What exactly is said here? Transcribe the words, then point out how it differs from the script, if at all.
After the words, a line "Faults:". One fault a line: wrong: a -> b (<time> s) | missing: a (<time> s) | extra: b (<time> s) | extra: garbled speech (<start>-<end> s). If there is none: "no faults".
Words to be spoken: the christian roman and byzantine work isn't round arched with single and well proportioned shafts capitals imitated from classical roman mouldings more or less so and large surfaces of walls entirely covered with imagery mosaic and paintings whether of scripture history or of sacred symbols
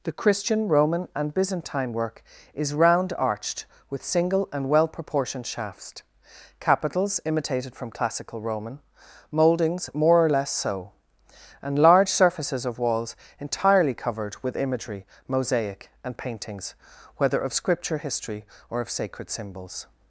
the christian roman and byzantine work is round arched with single and well proportioned shafts capitals imitated from classical roman mouldings more or less so and large surfaces of walls entirely covered with imagery mosaic and paintings whether of scripture history or of sacred symbols
Faults:
wrong: isn't -> is (2.5 s)